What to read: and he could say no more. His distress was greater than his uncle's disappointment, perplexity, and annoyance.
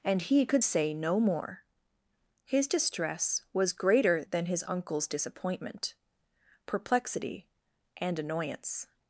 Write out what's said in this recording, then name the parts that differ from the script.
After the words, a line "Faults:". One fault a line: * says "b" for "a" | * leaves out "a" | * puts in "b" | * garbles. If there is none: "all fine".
and he could say no more. His distress was greater than his uncle's disappointment, perplexity, and annoyance.
Faults:
all fine